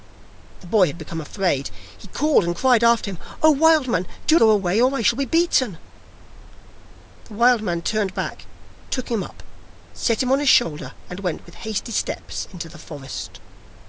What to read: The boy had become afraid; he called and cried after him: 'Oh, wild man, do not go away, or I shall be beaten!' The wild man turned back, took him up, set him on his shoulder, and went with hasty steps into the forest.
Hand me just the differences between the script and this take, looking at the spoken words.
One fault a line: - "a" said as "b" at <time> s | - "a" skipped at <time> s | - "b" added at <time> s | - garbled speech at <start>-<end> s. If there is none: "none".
- "not" skipped at 4.4 s